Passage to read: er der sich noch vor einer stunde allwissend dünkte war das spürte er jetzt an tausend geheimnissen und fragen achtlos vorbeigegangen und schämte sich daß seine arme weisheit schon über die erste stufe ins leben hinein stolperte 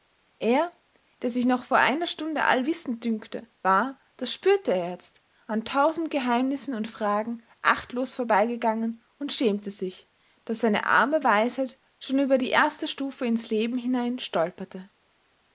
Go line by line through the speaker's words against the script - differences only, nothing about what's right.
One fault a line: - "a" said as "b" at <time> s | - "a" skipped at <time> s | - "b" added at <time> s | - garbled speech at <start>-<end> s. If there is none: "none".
none